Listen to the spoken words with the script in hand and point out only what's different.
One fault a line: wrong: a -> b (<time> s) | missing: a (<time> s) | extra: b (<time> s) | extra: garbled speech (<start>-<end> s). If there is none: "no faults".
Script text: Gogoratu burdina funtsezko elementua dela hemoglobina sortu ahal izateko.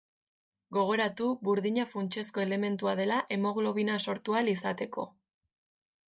no faults